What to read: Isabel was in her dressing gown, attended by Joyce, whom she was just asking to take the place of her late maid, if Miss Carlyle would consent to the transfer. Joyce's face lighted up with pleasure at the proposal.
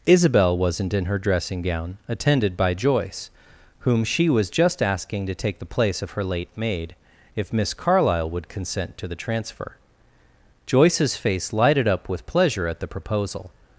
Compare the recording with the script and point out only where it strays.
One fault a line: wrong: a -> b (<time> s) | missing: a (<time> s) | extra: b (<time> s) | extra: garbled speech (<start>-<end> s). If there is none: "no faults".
wrong: was -> wasn't (0.6 s)